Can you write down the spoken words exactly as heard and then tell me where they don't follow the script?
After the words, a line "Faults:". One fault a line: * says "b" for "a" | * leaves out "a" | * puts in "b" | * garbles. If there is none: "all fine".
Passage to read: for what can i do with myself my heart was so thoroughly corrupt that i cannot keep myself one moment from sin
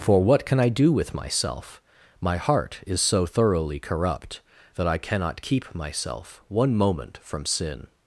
for what can i do with myself my heart is so thoroughly corrupt that i cannot keep myself one moment from sin
Faults:
* says "is" for "was"